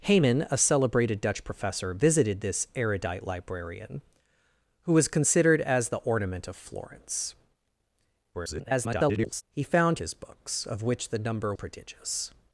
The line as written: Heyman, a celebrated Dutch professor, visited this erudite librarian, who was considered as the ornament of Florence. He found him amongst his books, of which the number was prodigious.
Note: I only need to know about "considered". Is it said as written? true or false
true